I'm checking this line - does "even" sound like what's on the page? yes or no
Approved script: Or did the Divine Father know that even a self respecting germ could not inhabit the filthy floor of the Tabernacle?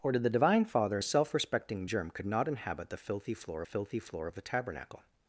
no